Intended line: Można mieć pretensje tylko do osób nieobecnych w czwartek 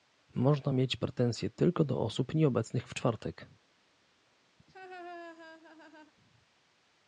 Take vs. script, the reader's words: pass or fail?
pass